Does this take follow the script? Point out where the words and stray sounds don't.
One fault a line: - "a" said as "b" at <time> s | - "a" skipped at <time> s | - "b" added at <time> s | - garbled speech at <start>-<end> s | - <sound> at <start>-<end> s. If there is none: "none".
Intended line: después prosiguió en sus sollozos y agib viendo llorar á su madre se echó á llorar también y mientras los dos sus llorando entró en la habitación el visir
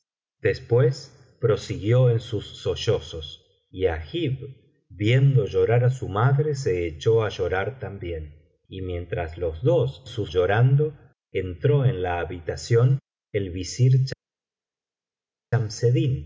none